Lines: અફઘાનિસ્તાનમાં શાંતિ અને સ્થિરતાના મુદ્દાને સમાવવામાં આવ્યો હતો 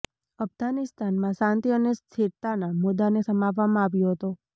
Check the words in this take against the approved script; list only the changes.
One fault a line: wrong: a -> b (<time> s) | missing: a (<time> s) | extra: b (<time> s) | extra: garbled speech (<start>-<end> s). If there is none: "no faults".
no faults